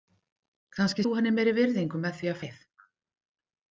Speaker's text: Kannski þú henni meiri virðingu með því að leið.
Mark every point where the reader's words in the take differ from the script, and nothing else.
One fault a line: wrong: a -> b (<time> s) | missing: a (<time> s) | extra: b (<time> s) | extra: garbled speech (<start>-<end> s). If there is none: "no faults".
no faults